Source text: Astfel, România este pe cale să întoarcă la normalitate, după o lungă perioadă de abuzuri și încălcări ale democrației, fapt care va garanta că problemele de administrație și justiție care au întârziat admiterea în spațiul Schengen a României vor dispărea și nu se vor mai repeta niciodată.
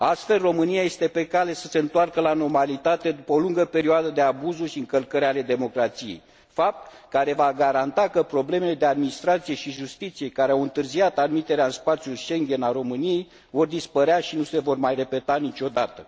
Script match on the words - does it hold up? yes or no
no